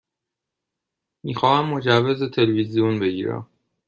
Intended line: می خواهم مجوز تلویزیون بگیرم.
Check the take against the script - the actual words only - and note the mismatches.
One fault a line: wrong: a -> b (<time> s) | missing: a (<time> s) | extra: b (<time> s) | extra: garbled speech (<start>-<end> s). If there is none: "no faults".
no faults